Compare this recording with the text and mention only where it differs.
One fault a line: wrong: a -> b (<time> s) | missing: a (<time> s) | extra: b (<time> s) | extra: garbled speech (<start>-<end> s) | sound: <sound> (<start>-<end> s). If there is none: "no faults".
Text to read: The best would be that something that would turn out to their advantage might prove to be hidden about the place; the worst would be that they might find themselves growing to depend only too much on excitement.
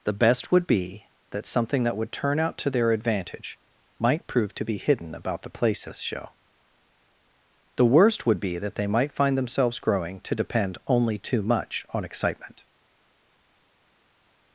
wrong: place -> places show (5.5 s)